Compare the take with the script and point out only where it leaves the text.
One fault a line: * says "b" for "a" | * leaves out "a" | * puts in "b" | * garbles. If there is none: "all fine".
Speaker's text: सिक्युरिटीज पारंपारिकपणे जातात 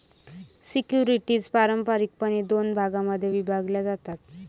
* puts in "दोन भागांमध्ये विभागल्या"